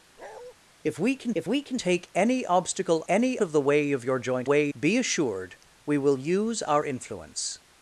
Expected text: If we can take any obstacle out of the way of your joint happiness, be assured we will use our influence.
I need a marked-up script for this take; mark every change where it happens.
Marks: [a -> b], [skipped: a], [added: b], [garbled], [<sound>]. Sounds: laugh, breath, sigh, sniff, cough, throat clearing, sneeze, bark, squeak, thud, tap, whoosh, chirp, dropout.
[bark] If we can [added: if we can] take any obstacle [out -> any] of the way of your joint [happiness, -> way] be assured we will use our influence.